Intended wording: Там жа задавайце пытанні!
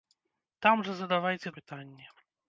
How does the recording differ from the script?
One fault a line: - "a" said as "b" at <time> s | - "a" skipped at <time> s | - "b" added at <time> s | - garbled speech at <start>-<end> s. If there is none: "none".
none